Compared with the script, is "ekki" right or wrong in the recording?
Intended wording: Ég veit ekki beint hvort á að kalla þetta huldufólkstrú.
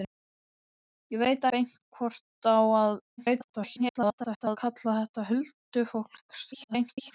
wrong